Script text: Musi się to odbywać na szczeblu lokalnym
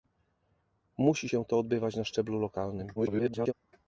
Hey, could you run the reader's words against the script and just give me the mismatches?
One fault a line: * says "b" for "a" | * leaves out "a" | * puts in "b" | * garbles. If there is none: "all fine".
* garbles